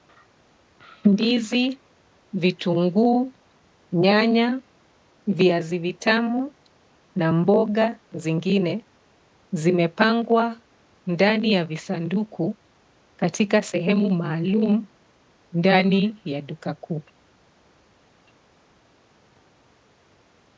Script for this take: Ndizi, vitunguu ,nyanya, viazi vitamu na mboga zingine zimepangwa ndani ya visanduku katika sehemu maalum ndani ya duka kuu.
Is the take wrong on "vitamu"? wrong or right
right